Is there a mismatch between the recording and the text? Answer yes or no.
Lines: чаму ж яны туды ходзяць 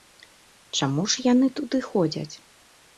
no